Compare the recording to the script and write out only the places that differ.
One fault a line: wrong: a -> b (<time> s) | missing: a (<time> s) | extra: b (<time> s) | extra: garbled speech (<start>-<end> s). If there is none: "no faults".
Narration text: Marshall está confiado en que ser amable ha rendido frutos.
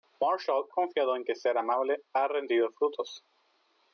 missing: está (0.7 s)